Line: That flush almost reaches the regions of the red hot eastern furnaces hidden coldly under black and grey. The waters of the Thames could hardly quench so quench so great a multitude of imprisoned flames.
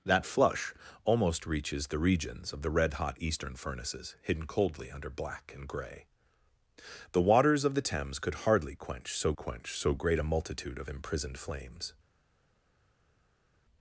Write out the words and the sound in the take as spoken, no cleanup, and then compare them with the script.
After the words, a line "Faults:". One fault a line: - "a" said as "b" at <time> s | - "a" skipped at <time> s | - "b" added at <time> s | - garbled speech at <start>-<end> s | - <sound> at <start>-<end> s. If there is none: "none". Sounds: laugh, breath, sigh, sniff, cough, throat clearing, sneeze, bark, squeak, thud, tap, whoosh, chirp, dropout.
That flush almost reaches the regions of the red hot eastern furnaces hidden coldly under black and grey. The waters of the Thames could hardly quench so quench so great a multitude of imprisoned flames.
Faults:
none